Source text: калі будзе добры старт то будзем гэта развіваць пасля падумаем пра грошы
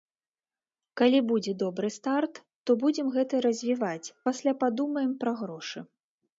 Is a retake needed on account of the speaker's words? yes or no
no